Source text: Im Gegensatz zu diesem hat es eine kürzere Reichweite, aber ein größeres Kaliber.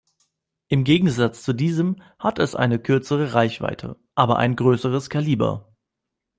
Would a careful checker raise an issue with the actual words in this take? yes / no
no